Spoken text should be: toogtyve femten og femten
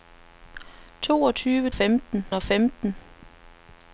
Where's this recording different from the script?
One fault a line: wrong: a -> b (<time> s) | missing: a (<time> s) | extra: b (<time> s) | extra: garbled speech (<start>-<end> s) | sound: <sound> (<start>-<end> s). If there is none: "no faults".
no faults